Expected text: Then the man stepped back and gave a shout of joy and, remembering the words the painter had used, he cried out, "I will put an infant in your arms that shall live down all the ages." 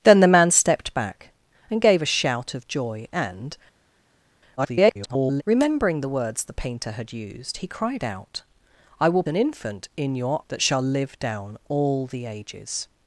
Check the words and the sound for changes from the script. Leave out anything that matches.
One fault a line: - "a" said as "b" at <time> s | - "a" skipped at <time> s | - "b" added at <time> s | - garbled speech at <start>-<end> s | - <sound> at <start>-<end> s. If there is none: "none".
- garbled speech at 4.6-5.4 s
- "put" skipped at 9.2 s
- "arms" skipped at 10.4 s